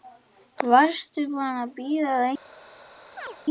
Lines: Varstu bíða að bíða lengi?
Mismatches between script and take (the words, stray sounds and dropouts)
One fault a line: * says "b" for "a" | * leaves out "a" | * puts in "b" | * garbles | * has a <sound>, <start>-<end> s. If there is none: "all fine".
* says "búin" for "bíða"
* has a chirp, 3.2-3.4 s